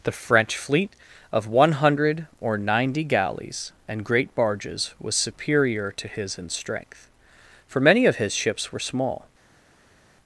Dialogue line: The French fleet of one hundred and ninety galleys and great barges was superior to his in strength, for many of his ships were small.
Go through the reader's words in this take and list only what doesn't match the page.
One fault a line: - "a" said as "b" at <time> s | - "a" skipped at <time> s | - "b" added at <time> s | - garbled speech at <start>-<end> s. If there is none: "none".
- "and" said as "or" at 2.4 s